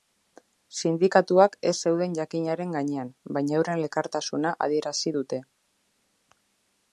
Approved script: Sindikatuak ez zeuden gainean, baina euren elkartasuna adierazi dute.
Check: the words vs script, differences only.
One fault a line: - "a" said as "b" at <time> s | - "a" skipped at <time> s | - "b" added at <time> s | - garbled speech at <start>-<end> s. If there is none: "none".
- "jakinaren" added at 2.2 s